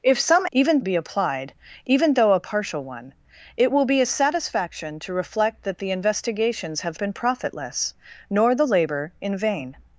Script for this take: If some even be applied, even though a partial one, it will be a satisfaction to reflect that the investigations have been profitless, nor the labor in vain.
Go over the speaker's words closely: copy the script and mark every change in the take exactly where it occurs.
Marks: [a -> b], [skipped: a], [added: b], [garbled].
If some even be applied, even though a partial one, it will be a satisfaction to reflect that the investigations have been profitless, nor the labor in vain.